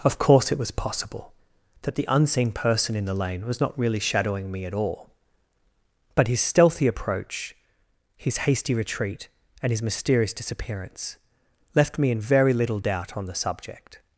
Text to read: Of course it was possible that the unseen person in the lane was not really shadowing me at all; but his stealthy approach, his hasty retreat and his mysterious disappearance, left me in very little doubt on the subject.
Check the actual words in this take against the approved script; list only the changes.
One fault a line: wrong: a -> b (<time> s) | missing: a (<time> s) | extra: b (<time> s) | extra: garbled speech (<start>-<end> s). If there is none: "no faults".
no faults